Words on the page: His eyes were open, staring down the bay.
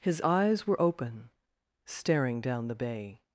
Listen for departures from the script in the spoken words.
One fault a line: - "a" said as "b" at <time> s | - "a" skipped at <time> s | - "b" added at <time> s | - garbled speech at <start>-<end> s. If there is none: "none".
none